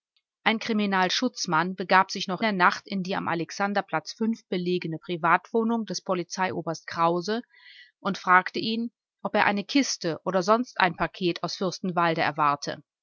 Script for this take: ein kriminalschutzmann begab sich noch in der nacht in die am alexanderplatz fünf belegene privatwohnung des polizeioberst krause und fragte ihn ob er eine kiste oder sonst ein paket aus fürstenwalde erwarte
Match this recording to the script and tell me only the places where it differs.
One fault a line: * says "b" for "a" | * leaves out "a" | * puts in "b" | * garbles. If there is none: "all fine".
* leaves out "in"